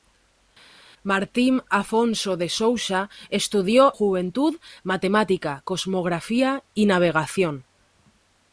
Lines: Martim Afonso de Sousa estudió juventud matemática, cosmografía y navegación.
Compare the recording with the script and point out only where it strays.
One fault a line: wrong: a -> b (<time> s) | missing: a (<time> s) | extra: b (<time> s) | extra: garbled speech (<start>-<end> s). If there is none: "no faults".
no faults